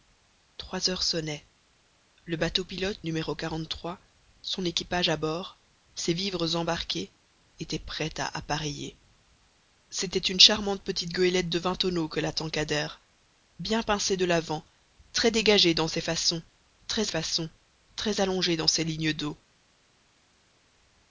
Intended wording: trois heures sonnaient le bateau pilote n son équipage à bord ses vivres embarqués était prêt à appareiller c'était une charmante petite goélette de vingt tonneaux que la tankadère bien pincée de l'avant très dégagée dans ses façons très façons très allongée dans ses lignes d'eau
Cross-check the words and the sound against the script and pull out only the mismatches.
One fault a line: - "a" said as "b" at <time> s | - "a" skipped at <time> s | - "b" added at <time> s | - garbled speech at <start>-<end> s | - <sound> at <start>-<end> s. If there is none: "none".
none